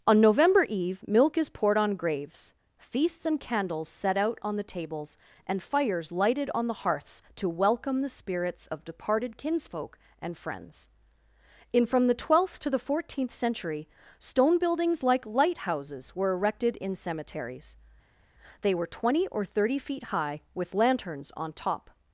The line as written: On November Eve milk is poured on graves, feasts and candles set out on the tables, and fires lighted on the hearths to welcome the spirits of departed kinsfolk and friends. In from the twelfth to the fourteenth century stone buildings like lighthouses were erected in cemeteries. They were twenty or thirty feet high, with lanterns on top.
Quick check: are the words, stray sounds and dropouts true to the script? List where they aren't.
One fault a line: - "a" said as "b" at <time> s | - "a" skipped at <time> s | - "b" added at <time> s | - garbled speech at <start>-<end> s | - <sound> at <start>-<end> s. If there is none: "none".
none